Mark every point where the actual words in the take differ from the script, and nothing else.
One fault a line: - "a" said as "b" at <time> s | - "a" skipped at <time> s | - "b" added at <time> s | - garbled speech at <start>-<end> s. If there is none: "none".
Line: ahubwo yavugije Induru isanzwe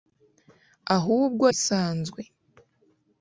- "yavugije Induru" skipped at 1.4 s